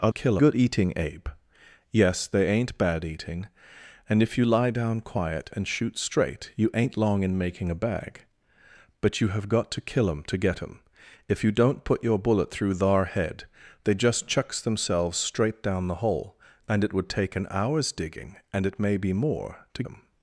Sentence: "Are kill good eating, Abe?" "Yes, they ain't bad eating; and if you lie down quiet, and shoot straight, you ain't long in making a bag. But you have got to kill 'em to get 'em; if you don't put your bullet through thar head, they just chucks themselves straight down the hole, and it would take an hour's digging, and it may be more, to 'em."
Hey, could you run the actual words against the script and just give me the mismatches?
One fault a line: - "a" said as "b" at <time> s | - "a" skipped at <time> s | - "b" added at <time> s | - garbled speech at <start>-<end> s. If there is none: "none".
none